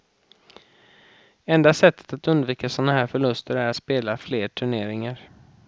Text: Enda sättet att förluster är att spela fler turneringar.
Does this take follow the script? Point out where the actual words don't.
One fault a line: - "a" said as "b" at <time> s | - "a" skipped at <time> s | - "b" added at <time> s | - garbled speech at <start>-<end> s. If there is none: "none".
- "undvika såna här" added at 2.3 s